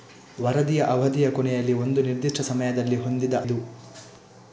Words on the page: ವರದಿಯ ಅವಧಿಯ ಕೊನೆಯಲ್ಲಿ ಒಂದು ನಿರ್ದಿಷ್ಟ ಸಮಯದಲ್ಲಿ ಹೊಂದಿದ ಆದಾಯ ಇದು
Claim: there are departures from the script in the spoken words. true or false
true